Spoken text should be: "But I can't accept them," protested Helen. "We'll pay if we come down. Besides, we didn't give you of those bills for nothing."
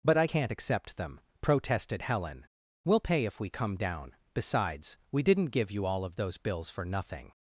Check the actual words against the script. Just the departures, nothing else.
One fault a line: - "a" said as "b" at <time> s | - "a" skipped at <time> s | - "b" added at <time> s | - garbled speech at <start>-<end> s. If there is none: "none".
- "all" added at 5.9 s